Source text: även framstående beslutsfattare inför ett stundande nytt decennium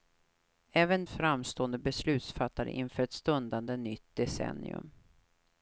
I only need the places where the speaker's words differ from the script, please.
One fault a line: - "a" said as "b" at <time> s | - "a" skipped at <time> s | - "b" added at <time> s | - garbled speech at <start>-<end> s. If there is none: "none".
none